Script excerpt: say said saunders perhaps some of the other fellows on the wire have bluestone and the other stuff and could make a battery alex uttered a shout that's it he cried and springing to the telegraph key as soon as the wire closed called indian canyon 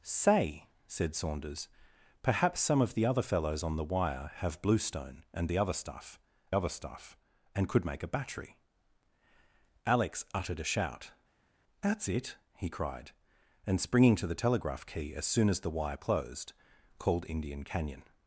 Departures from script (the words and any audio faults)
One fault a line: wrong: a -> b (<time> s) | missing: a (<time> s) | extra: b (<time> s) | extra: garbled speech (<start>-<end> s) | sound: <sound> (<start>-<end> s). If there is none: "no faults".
extra: other stuff (6.5 s)